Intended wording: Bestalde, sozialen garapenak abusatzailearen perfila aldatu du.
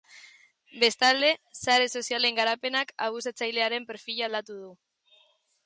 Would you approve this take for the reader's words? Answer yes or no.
no